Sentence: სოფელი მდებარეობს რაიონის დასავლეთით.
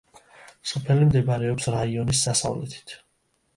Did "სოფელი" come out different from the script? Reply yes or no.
no